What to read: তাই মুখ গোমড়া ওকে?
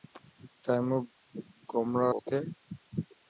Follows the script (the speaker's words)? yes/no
yes